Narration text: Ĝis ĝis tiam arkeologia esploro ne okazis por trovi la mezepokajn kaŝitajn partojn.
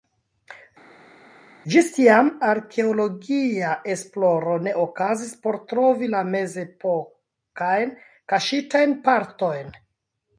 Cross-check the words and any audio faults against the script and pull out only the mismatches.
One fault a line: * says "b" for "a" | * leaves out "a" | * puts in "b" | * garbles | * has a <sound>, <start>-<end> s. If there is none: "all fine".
* leaves out "ĝis"